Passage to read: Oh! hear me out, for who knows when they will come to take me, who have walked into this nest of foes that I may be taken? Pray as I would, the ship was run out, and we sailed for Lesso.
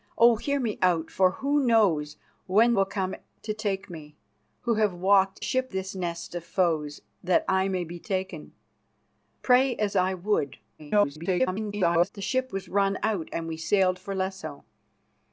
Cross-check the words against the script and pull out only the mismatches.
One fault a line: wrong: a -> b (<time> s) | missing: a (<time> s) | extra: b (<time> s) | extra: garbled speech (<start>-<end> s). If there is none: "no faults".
missing: they (2.7 s)
wrong: into -> ship (5.4 s)
extra: garbled speech (10.8-12.1 s)